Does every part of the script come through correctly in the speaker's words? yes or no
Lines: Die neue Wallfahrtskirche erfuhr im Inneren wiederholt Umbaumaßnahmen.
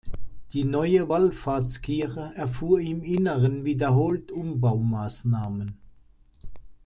yes